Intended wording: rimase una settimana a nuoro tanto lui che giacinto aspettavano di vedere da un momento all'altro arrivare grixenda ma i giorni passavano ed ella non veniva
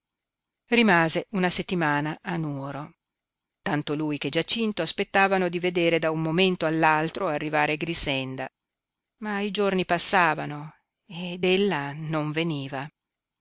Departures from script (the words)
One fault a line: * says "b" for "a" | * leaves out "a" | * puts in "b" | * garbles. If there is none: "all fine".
all fine